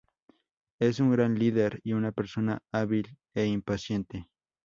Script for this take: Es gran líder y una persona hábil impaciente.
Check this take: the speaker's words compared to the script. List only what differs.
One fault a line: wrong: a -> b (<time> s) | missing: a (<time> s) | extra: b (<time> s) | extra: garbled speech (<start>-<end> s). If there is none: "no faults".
extra: un (1.0 s)
extra: e (3.3 s)